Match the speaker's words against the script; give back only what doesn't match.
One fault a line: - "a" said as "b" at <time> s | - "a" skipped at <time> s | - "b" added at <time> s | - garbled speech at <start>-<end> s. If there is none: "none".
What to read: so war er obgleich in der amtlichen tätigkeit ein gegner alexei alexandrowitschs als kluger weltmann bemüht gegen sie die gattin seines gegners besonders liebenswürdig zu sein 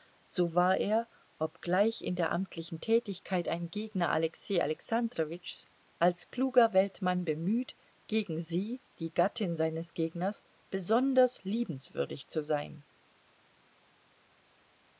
none